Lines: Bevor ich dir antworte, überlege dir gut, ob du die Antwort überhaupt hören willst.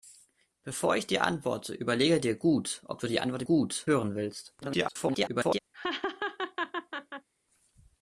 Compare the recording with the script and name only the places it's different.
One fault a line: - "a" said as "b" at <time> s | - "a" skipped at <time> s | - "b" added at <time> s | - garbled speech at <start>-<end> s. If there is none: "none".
- "überhaupt" said as "gut" at 3.4 s
- garbled speech at 4.6-5.6 s